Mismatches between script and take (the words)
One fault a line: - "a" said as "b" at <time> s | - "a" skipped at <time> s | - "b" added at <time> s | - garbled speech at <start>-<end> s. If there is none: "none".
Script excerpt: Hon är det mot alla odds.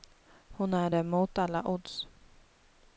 none